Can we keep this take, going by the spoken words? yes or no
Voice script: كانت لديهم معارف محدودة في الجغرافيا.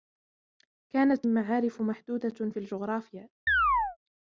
no